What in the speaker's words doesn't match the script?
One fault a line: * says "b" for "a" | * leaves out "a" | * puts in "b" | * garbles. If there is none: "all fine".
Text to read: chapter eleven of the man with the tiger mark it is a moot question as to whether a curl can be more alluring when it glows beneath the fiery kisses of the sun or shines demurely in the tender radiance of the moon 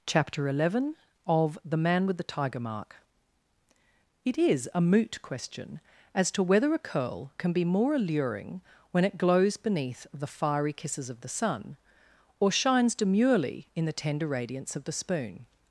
* says "spoon" for "moon"